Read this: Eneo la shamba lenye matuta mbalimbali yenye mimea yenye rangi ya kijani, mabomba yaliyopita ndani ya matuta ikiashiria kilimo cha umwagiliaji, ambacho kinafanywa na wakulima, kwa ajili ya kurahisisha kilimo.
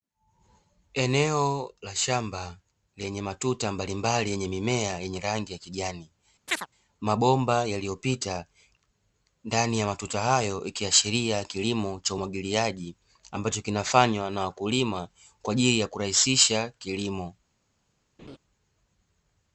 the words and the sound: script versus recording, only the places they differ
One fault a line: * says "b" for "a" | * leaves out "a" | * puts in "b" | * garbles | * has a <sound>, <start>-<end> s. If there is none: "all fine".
* has a chirp, 6.5-6.7 s
* puts in "hayo"
* has a laugh, 18.2-18.4 s